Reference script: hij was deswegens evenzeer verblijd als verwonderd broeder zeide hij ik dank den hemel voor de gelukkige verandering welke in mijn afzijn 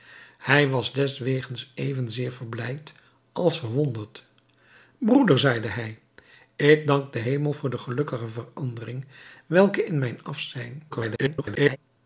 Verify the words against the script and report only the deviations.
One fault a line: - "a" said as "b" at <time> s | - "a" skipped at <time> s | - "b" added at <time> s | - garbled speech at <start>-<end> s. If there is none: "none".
- garbled speech at 10.9-11.8 s